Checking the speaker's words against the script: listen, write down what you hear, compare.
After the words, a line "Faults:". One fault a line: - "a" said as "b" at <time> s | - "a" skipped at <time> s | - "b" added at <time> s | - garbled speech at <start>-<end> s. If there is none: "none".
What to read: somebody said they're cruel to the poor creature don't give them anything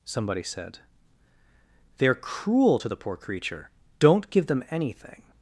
somebody said they're cruel to the poor creature don't give them anything
Faults:
none